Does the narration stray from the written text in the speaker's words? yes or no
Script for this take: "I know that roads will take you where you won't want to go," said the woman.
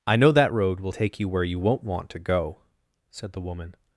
yes